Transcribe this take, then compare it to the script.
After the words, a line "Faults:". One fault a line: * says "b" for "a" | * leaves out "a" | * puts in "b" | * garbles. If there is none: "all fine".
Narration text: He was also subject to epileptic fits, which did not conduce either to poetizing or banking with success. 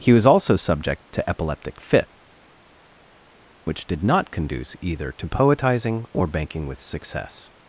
He was also subject to epileptic fit, which did not conduce either to poetizing or banking with success.
Faults:
* says "fit" for "fits"